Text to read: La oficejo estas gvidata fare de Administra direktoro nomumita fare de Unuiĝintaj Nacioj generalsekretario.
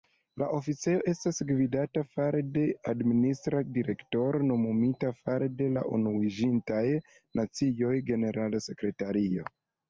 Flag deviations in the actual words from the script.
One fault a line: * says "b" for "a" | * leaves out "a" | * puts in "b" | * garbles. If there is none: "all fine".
* puts in "la"